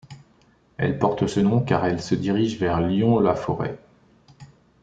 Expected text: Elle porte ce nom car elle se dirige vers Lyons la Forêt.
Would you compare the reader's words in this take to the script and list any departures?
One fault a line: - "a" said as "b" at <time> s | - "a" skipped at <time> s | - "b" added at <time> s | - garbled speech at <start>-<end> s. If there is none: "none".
none